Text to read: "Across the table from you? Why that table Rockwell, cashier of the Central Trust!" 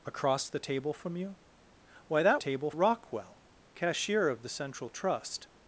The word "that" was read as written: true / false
true